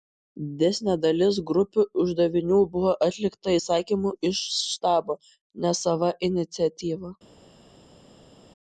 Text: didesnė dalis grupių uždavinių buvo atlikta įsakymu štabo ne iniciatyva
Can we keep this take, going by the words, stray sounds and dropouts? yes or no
no